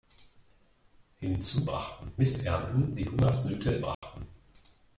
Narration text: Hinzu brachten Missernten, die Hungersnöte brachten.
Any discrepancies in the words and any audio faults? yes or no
yes